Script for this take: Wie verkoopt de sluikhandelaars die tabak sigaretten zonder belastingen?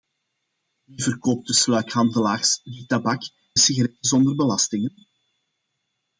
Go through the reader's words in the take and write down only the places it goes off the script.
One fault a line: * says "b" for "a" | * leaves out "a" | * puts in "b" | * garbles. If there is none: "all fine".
all fine